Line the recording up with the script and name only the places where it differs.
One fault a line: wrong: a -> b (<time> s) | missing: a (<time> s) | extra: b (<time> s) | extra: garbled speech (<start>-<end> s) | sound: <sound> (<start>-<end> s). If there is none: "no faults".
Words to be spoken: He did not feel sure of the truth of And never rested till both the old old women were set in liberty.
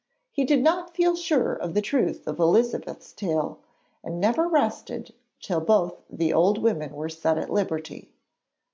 extra: Elizabeth's tale (2.4 s)
missing: old (6.6 s)
wrong: in -> at (7.4 s)